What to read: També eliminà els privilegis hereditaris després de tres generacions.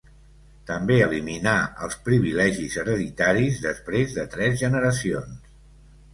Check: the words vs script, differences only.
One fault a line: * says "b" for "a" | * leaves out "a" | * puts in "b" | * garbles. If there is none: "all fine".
all fine